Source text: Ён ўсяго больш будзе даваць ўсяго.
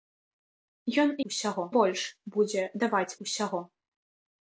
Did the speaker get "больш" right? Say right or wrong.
right